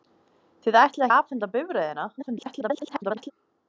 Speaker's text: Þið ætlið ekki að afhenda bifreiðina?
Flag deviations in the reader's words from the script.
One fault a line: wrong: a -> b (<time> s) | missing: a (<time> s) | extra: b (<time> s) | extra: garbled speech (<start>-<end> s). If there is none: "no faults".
missing: ekki (1.1 s)
extra: garbled speech (2.2-3.3 s)